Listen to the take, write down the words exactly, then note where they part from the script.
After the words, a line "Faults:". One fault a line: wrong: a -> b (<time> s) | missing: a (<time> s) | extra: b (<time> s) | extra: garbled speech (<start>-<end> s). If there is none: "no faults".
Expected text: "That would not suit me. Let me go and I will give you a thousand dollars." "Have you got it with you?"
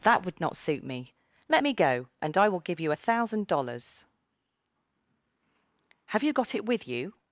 "That would not suit me. Let me go and I will give you a thousand dollars." "Have you got it with you?"
Faults:
no faults